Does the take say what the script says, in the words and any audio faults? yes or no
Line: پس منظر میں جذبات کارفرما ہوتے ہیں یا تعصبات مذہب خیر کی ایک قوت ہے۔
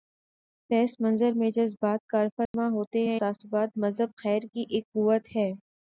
no